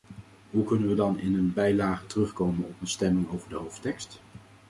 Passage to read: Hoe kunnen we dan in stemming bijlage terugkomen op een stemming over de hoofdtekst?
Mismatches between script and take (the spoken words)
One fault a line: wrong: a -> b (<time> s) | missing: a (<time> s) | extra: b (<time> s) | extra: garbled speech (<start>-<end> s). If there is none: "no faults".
wrong: stemming -> een (1.3 s)